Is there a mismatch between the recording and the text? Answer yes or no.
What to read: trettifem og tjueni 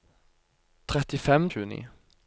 no